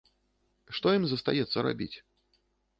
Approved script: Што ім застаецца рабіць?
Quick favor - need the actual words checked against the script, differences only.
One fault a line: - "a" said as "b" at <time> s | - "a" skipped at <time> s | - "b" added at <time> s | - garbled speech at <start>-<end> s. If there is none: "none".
none